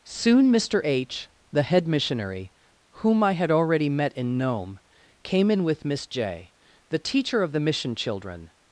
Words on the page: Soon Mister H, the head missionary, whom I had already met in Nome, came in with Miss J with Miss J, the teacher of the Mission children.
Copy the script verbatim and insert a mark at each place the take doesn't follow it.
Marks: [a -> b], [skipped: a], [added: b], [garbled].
Soon Mister H, the head missionary, whom I had already met in Nome, came in with Miss J [skipped: with Miss J,] the teacher of the Mission children.